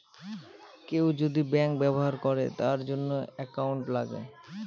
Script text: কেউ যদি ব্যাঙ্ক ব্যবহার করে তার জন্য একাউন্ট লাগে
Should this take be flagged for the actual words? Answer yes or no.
no